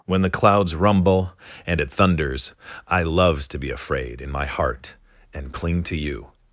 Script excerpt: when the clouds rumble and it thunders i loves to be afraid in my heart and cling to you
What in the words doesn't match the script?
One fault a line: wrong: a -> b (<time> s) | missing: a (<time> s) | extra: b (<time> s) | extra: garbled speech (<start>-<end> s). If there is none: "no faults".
no faults